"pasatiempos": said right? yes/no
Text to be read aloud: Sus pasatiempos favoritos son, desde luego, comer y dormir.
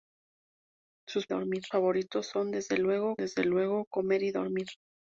no